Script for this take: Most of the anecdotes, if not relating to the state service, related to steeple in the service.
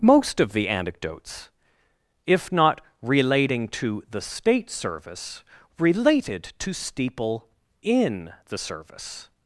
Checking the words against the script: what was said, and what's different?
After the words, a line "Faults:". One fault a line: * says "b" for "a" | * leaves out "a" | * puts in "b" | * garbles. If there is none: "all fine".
Most of the anecdotes, if not relating to the state service, related to steeple in the service.
Faults:
all fine